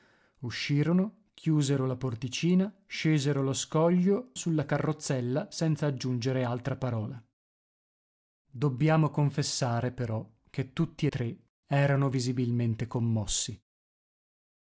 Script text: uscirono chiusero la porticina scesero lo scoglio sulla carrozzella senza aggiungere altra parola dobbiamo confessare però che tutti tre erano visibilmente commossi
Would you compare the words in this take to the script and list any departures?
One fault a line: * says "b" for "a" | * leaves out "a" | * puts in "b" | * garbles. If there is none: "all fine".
all fine